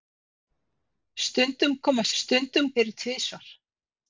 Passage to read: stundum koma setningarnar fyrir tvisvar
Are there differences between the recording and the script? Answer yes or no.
yes